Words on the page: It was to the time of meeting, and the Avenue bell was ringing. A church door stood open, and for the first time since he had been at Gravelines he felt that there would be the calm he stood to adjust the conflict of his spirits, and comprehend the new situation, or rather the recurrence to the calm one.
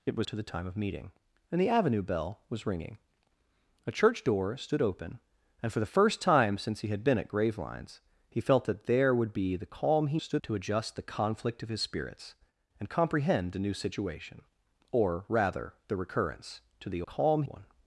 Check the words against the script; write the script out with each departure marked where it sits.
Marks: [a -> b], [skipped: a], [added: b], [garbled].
It was to the time of meeting, and the Avenue bell was ringing. A church door stood open, and for the first time since he had been at Gravelines he felt that there would be the calm he stood to adjust the conflict of his spirits, and comprehend the new situation, or rather the recurrence to the calm one.